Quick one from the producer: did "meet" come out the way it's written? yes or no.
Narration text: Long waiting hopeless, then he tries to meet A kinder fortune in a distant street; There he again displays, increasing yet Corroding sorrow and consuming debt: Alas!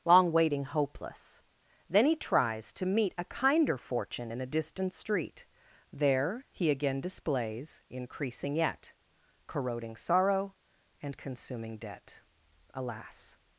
yes